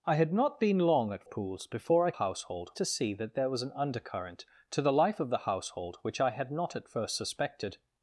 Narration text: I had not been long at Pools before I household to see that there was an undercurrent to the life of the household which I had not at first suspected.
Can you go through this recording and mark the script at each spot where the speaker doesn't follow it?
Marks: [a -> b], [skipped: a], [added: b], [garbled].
I had not been long at Pools before I household to see that there was an undercurrent to the life of the household which I had not at first suspected.